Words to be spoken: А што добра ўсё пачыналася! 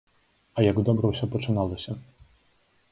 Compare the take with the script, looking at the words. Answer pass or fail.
fail